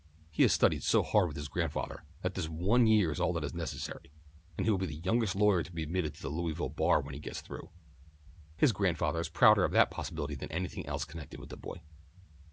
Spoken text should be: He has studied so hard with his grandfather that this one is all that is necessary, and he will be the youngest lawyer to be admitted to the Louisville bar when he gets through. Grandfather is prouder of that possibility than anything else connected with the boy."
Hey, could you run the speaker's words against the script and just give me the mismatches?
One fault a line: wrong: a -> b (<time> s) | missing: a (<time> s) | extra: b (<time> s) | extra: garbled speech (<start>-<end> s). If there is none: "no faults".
extra: year (2.9 s)
extra: His (8.5 s)